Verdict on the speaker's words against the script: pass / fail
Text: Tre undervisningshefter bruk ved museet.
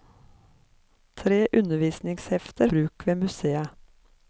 pass